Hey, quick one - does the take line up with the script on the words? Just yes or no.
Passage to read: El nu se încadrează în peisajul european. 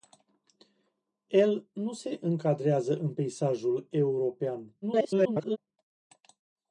no